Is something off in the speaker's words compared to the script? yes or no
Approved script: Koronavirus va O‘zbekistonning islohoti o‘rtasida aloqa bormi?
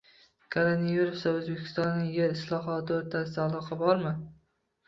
yes